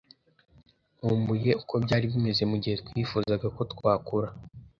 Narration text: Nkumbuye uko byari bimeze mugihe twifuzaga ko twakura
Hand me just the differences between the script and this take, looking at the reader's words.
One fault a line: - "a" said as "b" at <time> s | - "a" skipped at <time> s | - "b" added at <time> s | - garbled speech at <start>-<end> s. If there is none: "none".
none